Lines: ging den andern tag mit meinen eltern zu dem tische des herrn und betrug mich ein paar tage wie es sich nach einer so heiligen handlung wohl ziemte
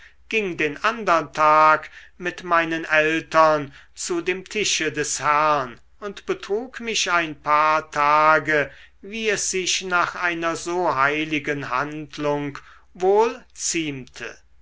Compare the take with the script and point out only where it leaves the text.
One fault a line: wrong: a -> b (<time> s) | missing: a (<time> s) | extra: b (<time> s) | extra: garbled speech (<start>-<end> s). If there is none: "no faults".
no faults